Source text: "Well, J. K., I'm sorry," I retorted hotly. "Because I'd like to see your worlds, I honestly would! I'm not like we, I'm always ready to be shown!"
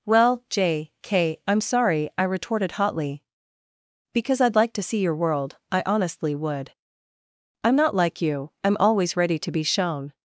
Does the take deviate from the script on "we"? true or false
true